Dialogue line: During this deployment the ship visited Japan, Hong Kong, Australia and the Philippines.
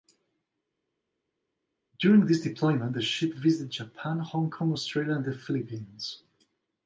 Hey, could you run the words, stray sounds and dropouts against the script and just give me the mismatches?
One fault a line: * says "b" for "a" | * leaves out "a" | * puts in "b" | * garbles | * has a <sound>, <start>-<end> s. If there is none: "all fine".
all fine